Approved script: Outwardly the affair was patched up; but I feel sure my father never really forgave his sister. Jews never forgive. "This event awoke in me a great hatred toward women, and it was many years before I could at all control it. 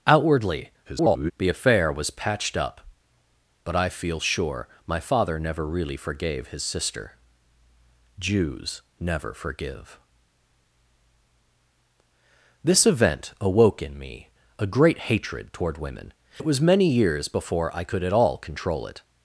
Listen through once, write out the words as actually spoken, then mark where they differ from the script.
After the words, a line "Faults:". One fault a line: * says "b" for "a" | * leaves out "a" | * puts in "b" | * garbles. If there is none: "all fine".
Outwardly [garbled] the affair was patched up; but I feel sure my father never really forgave his sister. Jews never forgive. "This event awoke in me a great hatred toward women, it was many years before I could at all control it.
Faults:
* garbles
* leaves out "and"